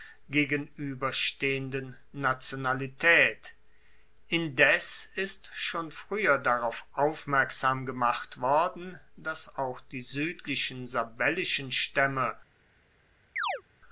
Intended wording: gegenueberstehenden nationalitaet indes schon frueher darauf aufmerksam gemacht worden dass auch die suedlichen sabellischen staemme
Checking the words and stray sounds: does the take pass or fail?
fail